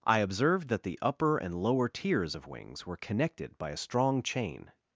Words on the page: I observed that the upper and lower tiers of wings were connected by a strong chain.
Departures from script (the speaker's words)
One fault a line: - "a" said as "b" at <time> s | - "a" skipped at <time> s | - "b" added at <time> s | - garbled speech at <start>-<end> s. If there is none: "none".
none